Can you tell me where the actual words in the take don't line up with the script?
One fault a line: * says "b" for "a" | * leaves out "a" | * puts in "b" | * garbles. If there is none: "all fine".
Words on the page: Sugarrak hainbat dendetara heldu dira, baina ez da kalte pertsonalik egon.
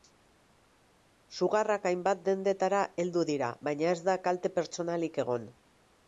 all fine